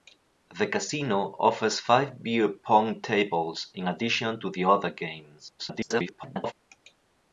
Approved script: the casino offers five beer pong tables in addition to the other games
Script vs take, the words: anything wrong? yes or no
yes